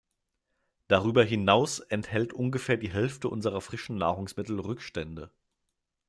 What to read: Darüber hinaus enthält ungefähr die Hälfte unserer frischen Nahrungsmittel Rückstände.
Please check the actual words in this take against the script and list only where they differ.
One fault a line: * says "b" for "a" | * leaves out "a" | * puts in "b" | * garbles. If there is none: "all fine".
all fine